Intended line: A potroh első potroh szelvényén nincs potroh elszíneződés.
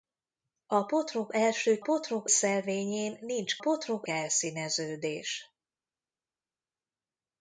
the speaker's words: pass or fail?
pass